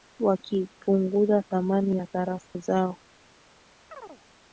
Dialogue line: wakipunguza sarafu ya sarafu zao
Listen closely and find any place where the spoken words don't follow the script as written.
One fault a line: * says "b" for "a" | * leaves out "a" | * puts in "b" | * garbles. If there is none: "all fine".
* says "thamani" for "sarafu"